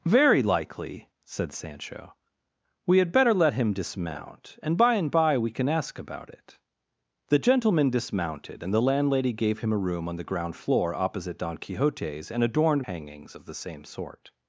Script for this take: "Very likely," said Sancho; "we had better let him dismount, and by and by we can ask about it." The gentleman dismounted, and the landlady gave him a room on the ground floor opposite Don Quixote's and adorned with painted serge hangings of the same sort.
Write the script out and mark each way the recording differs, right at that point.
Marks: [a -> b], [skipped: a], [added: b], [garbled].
"Very likely," said Sancho; "we had better let him dismount, and by and by we can ask about it." The gentleman dismounted, and the landlady gave him a room on the ground floor opposite Don Quixote's and adorned [skipped: with painted serge] hangings of the same sort.